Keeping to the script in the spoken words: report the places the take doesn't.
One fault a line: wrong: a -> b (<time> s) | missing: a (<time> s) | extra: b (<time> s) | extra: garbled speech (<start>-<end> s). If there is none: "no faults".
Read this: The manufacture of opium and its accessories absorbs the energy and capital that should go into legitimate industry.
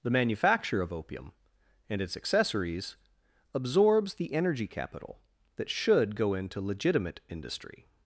missing: and (4.7 s)